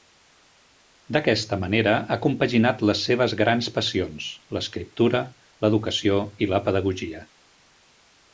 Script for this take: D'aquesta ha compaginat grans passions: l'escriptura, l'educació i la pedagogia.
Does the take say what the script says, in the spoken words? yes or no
no